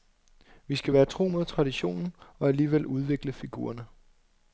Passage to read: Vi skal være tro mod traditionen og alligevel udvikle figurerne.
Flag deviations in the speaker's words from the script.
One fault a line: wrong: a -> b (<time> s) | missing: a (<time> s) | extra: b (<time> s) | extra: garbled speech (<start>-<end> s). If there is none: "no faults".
no faults